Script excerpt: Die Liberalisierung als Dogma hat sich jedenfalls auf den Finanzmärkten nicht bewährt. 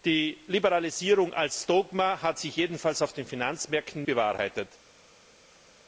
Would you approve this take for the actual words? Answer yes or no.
no